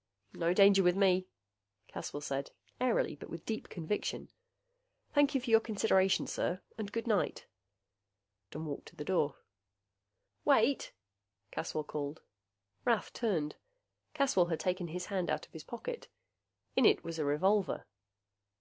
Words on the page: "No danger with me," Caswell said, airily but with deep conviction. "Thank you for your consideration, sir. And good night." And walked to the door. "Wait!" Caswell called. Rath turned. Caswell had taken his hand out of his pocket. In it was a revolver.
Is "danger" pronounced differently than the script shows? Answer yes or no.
no